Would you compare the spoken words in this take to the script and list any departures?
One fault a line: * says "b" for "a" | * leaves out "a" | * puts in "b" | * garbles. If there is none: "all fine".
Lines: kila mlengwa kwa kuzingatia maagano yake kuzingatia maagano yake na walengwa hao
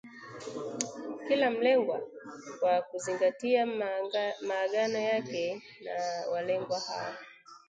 * leaves out "kuzingatia maagano yake"